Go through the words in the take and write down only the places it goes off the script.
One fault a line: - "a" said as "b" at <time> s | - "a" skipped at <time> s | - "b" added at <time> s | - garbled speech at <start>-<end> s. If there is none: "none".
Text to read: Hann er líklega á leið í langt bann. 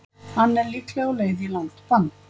none